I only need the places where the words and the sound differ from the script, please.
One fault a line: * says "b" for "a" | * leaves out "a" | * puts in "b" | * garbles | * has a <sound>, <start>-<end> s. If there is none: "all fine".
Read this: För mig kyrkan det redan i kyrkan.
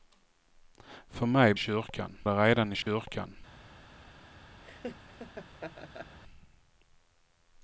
* has a dropout, 2.8-2.9 s
* has a laugh, 4.6-6.2 s